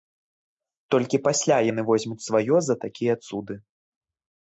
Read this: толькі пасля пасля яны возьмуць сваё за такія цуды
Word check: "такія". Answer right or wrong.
right